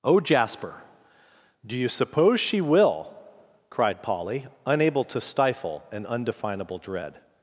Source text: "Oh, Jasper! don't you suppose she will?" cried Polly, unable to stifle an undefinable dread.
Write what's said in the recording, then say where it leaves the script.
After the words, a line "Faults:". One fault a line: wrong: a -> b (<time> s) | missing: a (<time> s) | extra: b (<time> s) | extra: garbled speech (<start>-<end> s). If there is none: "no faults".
"Oh, Jasper! do you suppose she will?" cried Polly, unable to stifle an undefinable dread.
Faults:
wrong: don't -> do (1.6 s)